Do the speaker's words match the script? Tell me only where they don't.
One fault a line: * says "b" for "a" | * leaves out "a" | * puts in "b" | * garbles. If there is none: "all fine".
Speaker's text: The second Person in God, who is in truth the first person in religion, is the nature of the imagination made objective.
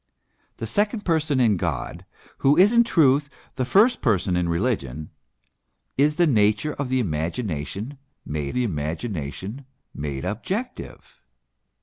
* puts in "the imagination made"